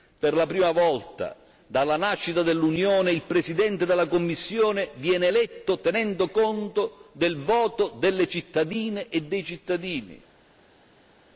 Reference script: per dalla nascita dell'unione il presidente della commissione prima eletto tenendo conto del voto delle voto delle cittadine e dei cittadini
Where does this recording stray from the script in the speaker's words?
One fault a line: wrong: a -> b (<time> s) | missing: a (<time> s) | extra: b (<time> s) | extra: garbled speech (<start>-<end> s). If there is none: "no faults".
extra: la prima volta (0.3 s)
wrong: prima -> viene (5.0 s)
missing: voto delle (8.3 s)